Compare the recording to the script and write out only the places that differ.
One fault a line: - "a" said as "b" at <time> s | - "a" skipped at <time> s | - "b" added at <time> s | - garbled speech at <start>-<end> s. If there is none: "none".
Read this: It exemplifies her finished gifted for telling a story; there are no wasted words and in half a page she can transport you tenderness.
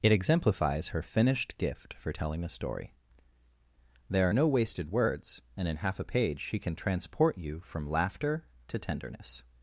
- "gifted" said as "gift" at 1.6 s
- "from laughter to" added at 7.6 s